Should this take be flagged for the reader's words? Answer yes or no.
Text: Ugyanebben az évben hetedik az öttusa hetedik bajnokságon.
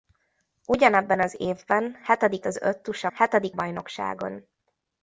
no